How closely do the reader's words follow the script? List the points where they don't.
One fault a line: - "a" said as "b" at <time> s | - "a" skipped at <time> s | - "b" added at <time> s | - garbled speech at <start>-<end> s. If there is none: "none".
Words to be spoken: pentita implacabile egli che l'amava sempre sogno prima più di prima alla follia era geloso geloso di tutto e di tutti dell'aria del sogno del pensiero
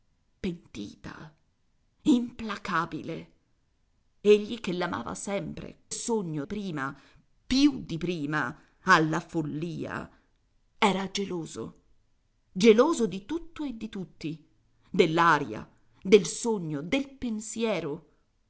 none